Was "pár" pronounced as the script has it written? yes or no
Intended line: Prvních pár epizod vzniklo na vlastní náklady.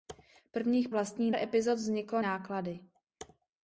no